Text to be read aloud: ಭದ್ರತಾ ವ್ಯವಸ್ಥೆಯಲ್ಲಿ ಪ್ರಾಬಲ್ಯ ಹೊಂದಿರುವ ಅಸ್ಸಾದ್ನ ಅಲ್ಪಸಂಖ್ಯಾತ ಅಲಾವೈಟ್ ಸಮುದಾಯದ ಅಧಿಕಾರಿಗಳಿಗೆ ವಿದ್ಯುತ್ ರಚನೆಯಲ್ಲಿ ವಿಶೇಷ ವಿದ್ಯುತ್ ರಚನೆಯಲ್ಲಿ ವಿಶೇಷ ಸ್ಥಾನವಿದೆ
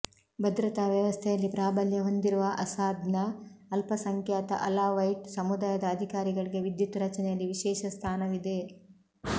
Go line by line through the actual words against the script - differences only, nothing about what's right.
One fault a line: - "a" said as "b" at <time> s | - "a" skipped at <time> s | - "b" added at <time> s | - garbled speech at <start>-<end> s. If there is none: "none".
- "ವಿದ್ಯುತ್ ರಚನೆಯಲ್ಲಿ ವಿಶೇಷ" skipped at 7.9 s